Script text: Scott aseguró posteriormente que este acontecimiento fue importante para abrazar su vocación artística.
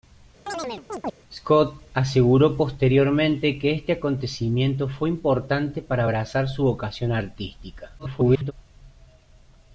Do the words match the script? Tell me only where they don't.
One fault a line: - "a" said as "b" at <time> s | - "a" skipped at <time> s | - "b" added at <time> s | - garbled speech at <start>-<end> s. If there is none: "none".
- garbled speech at 8.0-8.5 s